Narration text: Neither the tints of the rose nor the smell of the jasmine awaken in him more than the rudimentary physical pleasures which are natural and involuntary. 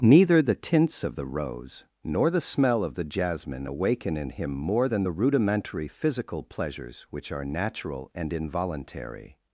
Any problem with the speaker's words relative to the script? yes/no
no